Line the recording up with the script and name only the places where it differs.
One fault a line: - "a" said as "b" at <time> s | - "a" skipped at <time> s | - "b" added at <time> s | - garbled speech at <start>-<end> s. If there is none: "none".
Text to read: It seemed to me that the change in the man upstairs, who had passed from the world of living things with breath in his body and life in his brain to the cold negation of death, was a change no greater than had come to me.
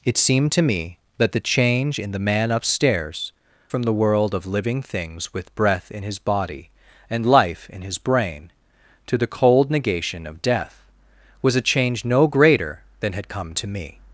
- "who had passed" skipped at 3.3 s